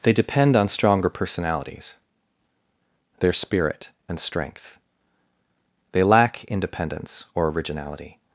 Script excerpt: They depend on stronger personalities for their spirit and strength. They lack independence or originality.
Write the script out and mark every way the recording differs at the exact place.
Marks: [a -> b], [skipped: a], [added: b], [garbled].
They depend on stronger personalities [skipped: for] their spirit and strength. They lack independence or originality.